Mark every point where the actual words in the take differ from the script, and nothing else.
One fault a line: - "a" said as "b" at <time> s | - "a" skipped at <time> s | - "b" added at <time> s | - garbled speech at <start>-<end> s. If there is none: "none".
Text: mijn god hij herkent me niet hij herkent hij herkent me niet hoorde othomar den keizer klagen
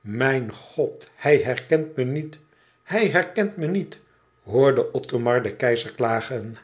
- "hij herkent" skipped at 3.6 s